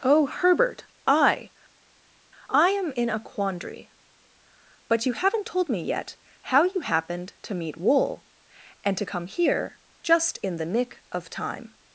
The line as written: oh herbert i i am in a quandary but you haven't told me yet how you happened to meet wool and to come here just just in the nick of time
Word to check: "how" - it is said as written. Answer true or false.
true